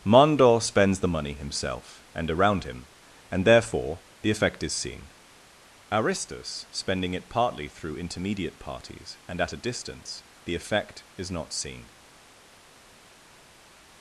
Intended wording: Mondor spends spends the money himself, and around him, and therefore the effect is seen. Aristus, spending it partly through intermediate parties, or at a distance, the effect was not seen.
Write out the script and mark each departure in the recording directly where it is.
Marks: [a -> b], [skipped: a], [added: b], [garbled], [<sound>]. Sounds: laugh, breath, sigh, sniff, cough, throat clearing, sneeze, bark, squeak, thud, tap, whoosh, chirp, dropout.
Mondor spends [skipped: spends] the money himself, and around him, and therefore the effect is seen. Aristus, spending it partly through intermediate parties, [or -> and] at a distance, the effect [was -> is] not seen.